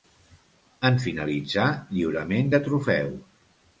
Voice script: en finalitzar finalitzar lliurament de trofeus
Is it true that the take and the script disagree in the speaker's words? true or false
true